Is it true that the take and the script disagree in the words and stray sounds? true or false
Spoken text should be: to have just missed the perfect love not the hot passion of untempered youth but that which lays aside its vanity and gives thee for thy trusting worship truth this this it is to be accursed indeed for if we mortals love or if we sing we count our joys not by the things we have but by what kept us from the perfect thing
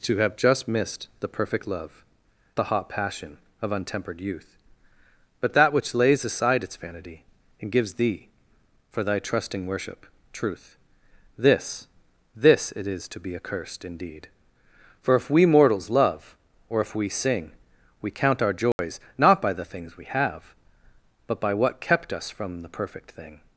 true